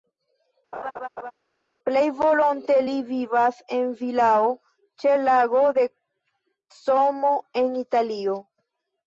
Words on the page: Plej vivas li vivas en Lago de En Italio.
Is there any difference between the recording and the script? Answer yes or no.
yes